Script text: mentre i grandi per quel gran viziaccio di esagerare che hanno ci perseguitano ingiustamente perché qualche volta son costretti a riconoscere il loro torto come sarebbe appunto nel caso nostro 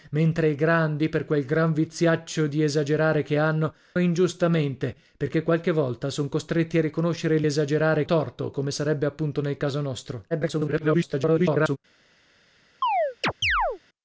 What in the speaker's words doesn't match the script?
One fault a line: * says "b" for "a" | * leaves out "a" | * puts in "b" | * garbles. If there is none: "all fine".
* leaves out "ci perseguitano"
* says "esagerare" for "loro"
* garbles